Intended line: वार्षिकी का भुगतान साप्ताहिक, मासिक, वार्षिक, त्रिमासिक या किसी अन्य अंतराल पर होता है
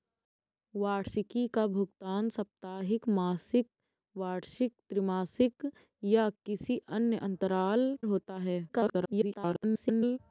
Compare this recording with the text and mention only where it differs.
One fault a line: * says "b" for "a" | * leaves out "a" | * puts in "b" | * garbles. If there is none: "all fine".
* leaves out "पर"
* garbles